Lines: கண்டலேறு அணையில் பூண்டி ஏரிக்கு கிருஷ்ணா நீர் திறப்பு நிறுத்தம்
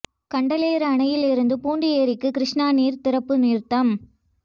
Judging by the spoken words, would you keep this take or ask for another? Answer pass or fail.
fail